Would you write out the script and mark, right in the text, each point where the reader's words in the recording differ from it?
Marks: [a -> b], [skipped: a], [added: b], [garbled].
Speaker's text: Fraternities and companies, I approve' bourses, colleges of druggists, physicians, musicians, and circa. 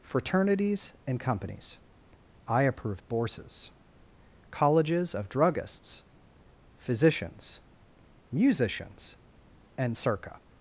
Fraternities and companies, I approve' bourses, colleges of druggists, physicians, musicians, and circa.